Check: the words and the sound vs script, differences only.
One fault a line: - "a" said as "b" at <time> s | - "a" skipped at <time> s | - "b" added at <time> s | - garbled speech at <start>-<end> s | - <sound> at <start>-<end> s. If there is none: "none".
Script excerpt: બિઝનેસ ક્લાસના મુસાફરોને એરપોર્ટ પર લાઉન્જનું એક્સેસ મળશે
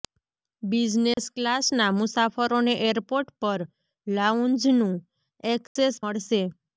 - dropout at 1.1-1.2 s
- dropout at 5.7-5.8 s